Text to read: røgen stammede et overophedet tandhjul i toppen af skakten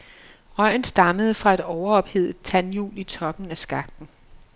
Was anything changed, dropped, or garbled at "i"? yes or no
no